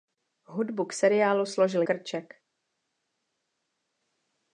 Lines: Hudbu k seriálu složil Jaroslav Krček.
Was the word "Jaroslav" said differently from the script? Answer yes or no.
yes